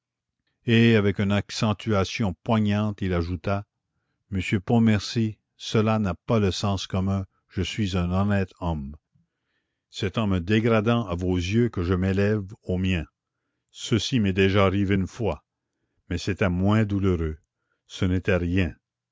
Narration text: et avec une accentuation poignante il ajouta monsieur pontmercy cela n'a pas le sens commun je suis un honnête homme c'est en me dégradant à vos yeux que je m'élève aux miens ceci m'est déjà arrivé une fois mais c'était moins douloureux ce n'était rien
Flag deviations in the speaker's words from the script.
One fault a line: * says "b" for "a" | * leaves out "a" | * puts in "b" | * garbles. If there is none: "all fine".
all fine